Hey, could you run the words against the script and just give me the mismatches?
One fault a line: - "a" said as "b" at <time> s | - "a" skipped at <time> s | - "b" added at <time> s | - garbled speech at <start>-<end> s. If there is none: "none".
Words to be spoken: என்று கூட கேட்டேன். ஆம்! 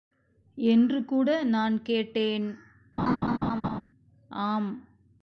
- "நான்" added at 1.4 s